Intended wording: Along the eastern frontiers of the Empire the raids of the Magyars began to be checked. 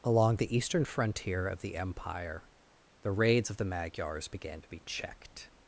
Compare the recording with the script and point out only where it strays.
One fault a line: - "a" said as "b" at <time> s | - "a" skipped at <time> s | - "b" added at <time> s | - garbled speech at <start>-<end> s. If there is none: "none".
- "frontiers" said as "frontier" at 0.8 s